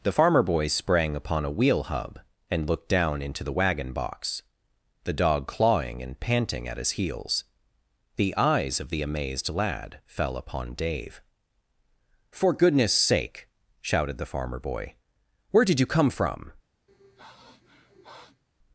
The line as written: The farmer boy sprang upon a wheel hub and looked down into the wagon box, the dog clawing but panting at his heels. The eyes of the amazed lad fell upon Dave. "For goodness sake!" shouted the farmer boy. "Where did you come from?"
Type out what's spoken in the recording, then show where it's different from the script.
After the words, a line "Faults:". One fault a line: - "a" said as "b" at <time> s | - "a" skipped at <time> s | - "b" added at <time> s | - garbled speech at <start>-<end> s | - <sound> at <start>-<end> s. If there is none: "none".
The farmer boy sprang upon a wheel hub and looked down into the wagon box, the dog clawing and panting at his heels. The eyes of the amazed lad fell upon Dave. "For goodness sake!" shouted the farmer boy. "Where did you come from?"
Faults:
- "but" said as "and" at 6.0 s
- sniff at 16.9-18.4 s